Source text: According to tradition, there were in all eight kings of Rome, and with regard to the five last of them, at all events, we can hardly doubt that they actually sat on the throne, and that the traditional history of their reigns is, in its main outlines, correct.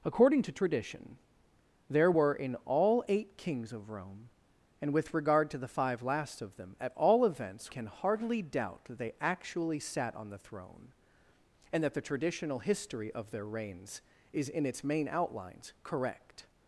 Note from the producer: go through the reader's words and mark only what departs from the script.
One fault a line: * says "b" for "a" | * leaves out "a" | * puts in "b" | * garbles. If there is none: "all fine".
* leaves out "we"